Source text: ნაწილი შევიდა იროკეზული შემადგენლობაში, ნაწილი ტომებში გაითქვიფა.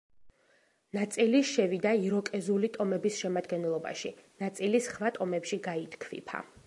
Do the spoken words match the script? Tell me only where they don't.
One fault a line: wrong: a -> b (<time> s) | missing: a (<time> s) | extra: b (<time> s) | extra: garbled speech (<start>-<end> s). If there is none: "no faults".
extra: ტომების (2.8 s)
extra: სხვა (4.9 s)